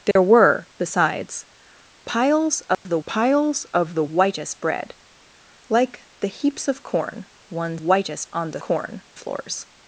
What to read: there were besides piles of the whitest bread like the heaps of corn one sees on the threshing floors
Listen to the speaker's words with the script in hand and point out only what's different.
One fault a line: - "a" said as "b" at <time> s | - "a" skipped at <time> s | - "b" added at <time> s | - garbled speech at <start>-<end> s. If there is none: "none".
- "piles of the" added at 3.1 s
- "sees" said as "whitest" at 7.8 s
- "threshing" said as "corn" at 8.6 s